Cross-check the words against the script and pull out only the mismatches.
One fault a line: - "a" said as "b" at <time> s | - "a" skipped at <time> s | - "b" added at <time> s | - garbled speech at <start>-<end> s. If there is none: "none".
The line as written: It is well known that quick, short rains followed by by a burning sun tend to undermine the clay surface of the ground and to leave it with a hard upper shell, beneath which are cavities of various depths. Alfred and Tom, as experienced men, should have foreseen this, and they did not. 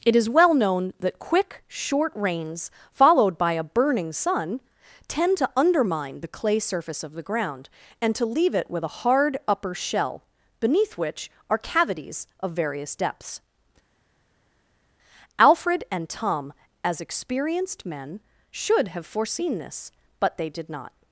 - "by" skipped at 3.5 s
- "and" said as "but" at 20.2 s